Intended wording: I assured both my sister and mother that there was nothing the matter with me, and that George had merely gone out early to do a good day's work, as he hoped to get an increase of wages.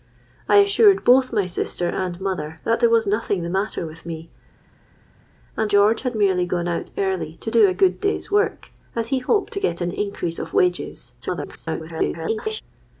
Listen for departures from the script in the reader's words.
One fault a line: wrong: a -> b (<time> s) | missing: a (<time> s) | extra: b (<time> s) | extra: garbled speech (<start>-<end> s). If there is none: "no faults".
missing: that (5.7 s)
extra: garbled speech (11.2-12.6 s)